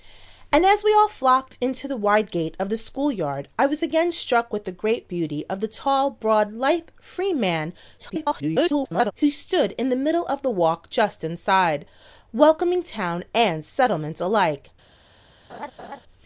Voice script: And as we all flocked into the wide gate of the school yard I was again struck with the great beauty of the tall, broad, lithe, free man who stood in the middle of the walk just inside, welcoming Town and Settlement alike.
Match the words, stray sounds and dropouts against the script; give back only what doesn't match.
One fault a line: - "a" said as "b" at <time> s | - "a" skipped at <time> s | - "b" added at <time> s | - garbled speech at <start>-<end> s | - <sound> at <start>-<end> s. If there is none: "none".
- garbled speech at 8.0-9.1 s
- laugh at 15.5-16.0 s